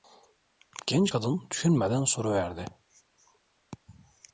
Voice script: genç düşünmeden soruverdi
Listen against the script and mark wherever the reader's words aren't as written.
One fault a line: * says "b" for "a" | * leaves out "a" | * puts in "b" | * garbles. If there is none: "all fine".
* puts in "kadın"